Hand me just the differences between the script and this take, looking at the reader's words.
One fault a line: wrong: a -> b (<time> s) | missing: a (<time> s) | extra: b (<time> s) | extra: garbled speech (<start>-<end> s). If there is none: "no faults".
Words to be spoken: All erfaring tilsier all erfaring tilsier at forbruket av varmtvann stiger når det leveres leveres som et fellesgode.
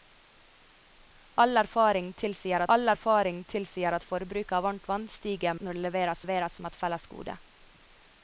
no faults